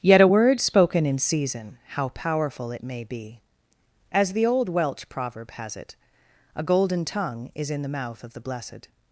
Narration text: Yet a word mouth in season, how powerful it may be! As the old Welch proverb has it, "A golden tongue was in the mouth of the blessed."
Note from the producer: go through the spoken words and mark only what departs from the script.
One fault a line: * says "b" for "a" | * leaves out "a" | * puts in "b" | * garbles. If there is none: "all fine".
* says "spoken" for "mouth"
* says "is" for "was"